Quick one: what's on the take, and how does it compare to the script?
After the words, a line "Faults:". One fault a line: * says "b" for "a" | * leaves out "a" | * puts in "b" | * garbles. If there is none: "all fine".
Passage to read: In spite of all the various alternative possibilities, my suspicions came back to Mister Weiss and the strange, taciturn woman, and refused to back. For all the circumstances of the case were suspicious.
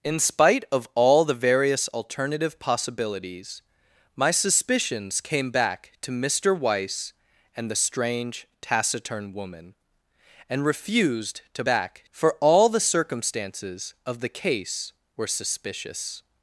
In spite of all the various alternative possibilities, my suspicions came back to Mister Weiss and the strange, taciturn woman, and refused to back. For all the circumstances of the case were suspicious.
Faults:
all fine